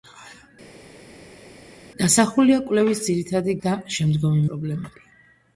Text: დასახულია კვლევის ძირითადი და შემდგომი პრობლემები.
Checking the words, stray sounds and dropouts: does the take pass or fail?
pass